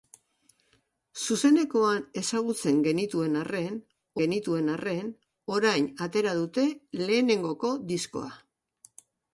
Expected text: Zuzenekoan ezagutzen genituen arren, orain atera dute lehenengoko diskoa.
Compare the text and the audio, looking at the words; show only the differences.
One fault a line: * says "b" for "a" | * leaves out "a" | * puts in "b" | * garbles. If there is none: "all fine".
* puts in "genituen arren"